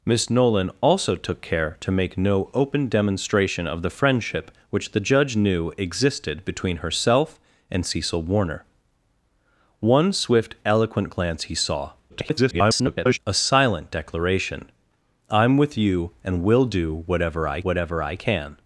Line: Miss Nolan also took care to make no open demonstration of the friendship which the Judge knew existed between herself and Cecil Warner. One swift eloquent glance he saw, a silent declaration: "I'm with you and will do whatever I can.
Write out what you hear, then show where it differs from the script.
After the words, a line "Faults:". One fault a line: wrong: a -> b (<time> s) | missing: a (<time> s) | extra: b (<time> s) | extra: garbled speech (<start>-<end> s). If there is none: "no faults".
Miss Nolan also took care to make no open demonstration of the friendship which the Judge knew existed between herself and Cecil Warner. One swift eloquent glance he saw, [garbled] a silent declaration: "I'm with you and will do whatever I whatever I can.
Faults:
extra: garbled speech (12.1-13.2 s)
extra: whatever I (17.6 s)